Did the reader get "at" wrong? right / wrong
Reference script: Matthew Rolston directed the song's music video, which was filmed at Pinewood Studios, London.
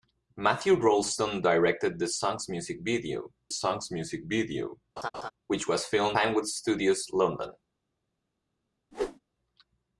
wrong